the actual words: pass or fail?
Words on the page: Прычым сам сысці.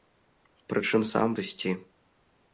pass